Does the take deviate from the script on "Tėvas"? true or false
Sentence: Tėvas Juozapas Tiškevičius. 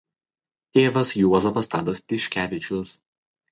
false